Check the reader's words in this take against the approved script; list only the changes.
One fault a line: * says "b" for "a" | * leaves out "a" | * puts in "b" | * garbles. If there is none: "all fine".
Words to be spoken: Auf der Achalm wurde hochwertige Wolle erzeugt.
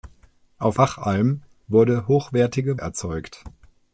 * leaves out "der"
* leaves out "Wolle"